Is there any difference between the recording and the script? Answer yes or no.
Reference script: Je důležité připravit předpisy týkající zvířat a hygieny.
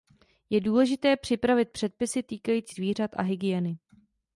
no